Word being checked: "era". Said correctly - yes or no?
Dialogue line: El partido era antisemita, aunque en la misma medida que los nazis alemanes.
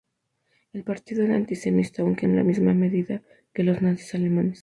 yes